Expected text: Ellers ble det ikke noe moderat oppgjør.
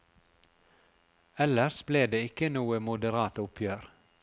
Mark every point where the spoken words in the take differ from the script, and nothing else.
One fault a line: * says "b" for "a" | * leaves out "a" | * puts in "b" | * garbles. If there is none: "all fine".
all fine